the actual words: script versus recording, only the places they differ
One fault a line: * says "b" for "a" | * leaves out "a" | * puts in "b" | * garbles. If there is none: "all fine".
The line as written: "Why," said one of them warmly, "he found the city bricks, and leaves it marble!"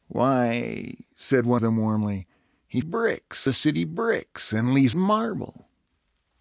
* leaves out "of"
* says "bricks" for "found"
* leaves out "it"